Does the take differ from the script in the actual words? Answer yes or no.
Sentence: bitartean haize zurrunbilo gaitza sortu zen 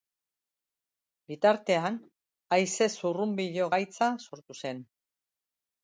no